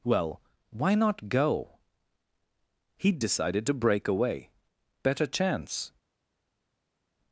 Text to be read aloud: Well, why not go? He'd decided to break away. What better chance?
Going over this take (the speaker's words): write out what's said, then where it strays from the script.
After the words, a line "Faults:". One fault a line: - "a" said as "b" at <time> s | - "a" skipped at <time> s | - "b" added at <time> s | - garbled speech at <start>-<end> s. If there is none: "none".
Well, why not go? He'd decided to break away. Better chance?
Faults:
- "What" skipped at 4.5 s